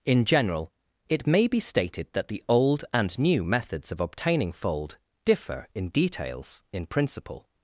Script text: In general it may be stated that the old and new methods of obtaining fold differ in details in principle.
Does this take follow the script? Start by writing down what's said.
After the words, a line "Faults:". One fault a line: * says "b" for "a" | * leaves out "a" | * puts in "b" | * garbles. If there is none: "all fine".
In general it may be stated that the old and new methods of obtaining fold differ in details in principle.
Faults:
all fine